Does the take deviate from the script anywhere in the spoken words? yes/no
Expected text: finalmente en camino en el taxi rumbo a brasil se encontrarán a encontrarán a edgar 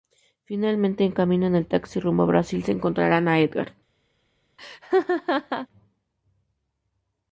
yes